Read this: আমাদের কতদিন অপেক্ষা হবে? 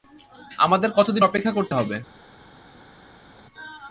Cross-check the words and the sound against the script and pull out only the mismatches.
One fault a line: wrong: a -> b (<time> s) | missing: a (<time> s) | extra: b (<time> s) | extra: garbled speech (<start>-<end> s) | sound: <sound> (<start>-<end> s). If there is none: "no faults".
extra: করতে (1.5 s)